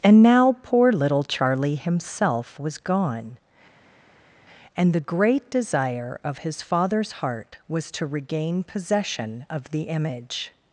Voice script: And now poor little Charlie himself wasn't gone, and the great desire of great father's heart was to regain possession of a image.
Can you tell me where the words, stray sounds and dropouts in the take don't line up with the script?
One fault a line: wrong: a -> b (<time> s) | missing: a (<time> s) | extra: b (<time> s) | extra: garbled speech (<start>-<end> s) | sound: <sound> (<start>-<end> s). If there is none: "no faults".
wrong: wasn't -> was (2.6 s)
wrong: great -> his (6.4 s)
wrong: a -> the (9.7 s)